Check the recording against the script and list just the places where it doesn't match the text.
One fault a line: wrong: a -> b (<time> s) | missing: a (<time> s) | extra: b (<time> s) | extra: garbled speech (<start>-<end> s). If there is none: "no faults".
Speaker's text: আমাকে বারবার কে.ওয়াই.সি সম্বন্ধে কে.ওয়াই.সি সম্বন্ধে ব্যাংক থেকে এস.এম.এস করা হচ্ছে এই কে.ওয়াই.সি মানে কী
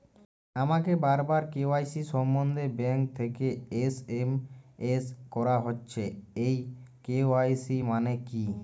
missing: কে.ওয়াই.সি সম্বন্ধে (2.6 s)